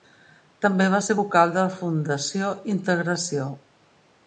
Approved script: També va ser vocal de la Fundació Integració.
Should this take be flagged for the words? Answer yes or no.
no